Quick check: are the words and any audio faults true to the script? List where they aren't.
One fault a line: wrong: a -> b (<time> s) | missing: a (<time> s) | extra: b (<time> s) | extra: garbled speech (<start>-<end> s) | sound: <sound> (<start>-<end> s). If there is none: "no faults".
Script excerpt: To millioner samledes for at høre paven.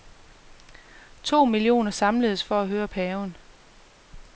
no faults